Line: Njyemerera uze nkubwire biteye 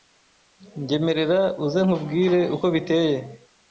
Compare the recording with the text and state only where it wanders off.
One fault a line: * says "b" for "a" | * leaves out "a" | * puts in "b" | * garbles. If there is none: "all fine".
* puts in "uko"